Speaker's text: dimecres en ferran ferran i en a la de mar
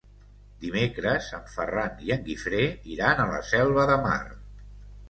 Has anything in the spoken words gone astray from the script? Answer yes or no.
yes